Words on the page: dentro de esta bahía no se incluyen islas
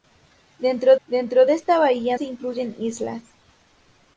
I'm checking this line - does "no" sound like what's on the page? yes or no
no